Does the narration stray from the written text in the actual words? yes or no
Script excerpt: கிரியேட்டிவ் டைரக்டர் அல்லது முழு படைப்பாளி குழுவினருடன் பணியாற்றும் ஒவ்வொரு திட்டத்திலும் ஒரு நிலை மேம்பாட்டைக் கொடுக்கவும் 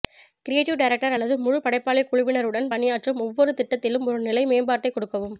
no